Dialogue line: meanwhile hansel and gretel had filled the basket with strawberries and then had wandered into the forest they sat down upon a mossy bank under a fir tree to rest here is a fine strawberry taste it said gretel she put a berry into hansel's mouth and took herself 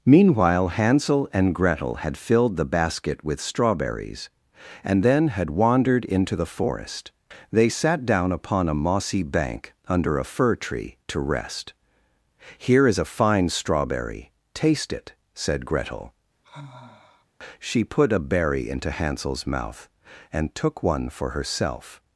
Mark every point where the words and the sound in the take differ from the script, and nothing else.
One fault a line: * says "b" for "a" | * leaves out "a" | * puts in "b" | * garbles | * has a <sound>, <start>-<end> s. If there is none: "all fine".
* has a sigh, 16.4-17.3 s
* puts in "one for"